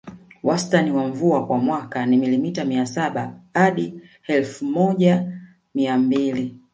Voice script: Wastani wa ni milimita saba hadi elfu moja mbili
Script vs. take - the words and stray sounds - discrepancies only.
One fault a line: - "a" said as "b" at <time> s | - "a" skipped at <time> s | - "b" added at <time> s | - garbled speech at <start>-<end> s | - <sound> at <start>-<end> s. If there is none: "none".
- "mvua kwa mwaka" added at 1.1 s
- "mia" added at 2.6 s
- "mia" added at 5.7 s